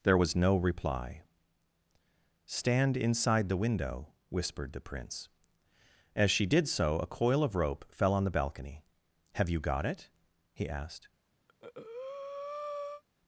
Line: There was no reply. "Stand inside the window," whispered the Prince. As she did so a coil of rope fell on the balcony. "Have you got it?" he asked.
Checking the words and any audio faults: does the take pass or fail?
fail